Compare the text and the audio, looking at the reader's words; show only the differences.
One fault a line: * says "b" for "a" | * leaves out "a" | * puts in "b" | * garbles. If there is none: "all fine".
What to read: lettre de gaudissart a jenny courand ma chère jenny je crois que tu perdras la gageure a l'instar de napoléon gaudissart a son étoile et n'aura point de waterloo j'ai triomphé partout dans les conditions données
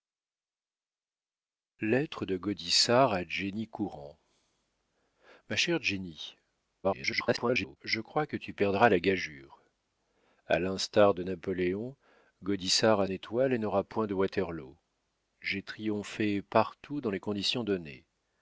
* garbles
* leaves out "son"